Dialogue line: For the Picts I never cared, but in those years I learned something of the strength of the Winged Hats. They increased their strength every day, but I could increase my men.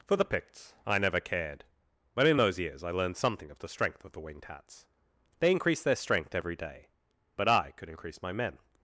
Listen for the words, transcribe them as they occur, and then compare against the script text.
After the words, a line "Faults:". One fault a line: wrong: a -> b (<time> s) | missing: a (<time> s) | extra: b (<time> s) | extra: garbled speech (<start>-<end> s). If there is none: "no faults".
For the Picts I never cared, but in those years I learned something of the strength of the Winged Hats. They increased their strength every day, but I could increase my men.
Faults:
no faults